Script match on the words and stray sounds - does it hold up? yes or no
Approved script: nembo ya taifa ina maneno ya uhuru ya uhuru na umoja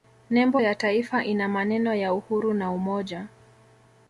no